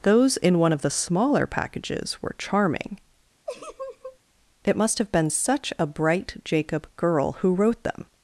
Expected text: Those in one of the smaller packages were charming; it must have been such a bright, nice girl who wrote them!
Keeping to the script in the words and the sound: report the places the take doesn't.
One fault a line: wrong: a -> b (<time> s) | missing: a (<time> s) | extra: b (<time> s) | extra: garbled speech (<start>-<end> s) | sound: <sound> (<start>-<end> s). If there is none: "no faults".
sound: laugh (3.5-4.2 s)
wrong: nice -> jacob (6.4 s)